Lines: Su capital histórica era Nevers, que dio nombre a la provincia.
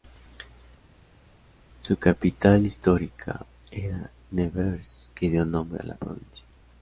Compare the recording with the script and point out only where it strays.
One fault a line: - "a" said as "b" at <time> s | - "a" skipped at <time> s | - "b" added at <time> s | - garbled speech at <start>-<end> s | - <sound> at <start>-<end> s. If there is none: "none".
none